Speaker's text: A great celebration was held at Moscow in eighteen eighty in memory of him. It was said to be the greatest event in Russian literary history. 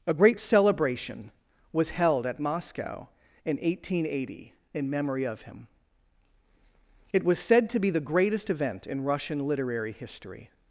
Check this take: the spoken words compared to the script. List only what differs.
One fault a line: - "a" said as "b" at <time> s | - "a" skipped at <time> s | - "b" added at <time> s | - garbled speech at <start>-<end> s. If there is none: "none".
none